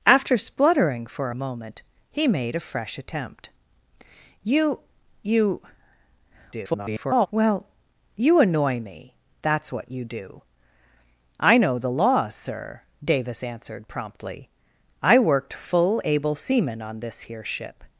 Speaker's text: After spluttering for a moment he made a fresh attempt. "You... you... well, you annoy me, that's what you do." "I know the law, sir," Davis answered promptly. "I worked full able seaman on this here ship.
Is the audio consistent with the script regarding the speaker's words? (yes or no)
no